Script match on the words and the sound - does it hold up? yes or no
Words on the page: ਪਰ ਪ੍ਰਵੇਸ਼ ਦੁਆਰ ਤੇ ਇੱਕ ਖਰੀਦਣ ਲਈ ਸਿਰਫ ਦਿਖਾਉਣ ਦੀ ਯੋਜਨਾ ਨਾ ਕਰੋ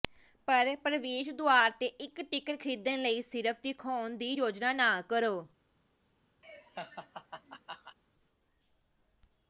no